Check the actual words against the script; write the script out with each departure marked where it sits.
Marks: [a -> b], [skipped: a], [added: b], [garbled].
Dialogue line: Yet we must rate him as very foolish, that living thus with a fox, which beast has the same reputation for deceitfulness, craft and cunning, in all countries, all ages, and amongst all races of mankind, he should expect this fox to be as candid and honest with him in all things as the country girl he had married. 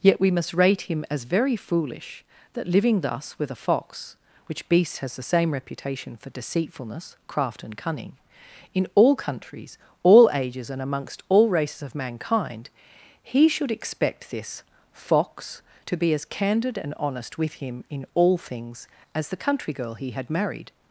Yet we must rate him as very foolish, that living thus with a fox, which beast has the same reputation for deceitfulness, craft and cunning, in all countries, all ages, and amongst all races of mankind, he should expect this fox to be as candid and honest with him in all things as the country girl he had married.